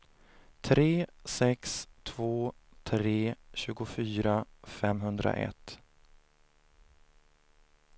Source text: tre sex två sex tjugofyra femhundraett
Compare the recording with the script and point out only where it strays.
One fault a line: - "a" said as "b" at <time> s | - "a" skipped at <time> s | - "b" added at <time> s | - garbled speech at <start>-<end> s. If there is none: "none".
- "sex" said as "tre" at 2.8 s